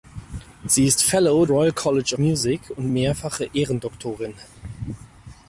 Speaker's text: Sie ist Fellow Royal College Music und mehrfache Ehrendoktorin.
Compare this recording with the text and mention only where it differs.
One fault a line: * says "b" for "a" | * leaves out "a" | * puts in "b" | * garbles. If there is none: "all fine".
all fine